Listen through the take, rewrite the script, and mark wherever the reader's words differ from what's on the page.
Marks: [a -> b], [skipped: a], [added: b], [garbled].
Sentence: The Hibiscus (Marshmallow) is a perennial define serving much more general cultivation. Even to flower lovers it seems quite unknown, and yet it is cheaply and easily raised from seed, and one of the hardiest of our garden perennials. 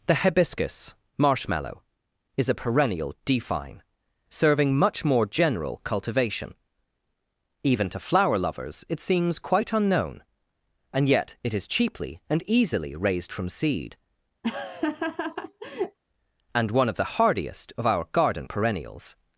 The Hibiscus (Marshmallow) is a perennial define serving much more general cultivation. Even to flower lovers it seems quite unknown, and yet it is cheaply and easily raised from seed, and one of the hardiest of our garden perennials.